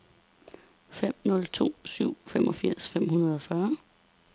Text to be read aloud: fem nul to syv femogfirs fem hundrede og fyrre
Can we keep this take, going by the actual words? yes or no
yes